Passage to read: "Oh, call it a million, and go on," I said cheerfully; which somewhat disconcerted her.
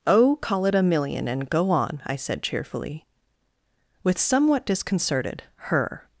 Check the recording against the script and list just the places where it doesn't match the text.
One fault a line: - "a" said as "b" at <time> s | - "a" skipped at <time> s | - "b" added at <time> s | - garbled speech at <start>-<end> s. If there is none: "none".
- "which" said as "with" at 4.0 s